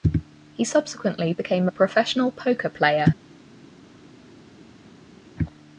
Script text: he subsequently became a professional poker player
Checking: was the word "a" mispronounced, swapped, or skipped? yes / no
no